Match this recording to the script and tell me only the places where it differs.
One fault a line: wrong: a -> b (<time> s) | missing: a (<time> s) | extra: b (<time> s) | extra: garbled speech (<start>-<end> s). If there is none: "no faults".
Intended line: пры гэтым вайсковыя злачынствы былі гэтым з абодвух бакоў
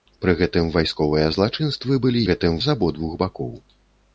no faults